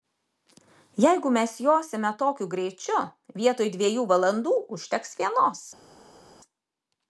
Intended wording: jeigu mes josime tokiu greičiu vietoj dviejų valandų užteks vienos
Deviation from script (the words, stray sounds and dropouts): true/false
false